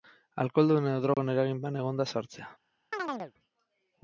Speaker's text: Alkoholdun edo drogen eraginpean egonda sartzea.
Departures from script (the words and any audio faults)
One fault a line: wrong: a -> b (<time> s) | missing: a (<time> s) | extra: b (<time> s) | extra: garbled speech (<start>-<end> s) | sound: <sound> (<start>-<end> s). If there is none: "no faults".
sound: dropout (1.1-1.2 s)
sound: chirp (2.9-3.3 s)